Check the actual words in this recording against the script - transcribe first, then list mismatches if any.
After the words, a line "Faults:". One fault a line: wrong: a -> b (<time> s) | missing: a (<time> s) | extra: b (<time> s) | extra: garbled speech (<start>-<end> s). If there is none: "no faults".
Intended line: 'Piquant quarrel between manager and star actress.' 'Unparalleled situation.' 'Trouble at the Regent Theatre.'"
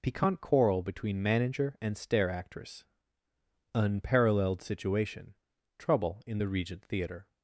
'Piquant quarrel between manager and stair actress.' 'Unparalleled situation.' 'Trouble in the Regent Theatre.'"
Faults:
wrong: star -> stair (2.0 s)
wrong: at -> in (6.2 s)